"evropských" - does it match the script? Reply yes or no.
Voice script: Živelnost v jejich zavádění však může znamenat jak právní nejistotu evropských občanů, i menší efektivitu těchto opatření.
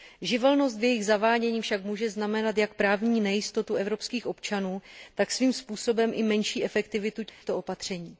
yes